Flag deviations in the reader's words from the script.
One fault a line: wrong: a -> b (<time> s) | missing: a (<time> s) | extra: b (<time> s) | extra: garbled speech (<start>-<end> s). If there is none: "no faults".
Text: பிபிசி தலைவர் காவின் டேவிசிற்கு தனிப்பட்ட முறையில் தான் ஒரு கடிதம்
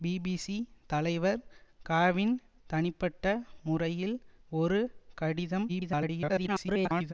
missing: டேவிசிற்கு (2.3 s)
missing: தான் (4.2 s)
extra: garbled speech (5.7-7.1 s)